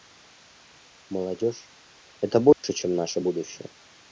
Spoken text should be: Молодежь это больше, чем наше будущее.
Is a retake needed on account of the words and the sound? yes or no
yes